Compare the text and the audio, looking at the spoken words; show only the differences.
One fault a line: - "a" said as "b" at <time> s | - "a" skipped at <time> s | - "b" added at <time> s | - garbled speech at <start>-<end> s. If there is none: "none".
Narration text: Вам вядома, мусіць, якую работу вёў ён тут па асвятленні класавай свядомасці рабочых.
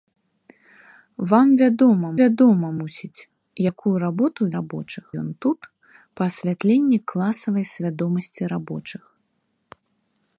- "вядома" added at 2.2 s
- "вёў" said as "рабочых" at 4.6 s